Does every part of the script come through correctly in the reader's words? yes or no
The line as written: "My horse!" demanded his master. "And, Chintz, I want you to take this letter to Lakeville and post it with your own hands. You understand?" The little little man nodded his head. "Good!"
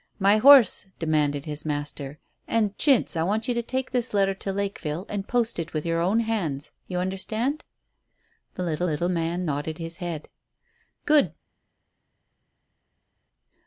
yes